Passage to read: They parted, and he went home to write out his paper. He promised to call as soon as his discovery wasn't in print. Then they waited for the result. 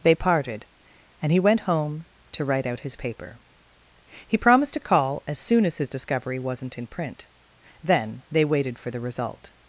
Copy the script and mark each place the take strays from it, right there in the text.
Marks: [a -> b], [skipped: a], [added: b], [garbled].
They parted, and he went home to write out his paper. He promised to call as soon as his discovery wasn't in print. Then they waited for the result.